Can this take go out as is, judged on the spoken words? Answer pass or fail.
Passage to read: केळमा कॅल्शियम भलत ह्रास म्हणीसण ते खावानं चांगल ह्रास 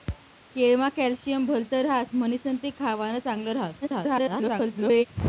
fail